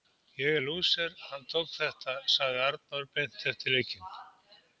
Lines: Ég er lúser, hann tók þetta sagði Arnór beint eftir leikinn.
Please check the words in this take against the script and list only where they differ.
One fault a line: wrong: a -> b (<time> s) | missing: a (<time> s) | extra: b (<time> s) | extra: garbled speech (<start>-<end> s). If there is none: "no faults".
no faults